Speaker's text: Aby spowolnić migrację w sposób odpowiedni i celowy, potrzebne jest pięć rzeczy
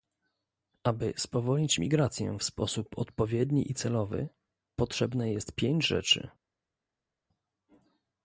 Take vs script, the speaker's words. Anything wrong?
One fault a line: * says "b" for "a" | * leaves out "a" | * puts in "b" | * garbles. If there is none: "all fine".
all fine